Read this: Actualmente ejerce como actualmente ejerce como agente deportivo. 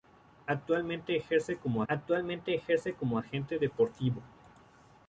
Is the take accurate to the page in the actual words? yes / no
yes